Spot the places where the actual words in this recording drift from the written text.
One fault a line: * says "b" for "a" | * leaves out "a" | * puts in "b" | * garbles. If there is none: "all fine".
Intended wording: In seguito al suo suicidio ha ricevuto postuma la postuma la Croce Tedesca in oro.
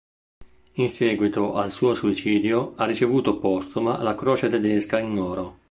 * leaves out "postuma la"